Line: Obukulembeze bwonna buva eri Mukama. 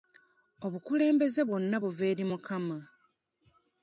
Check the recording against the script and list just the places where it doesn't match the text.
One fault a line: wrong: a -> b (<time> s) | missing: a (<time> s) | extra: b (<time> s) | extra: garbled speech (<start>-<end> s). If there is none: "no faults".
no faults